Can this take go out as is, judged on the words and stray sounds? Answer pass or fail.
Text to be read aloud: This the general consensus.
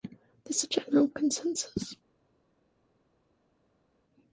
pass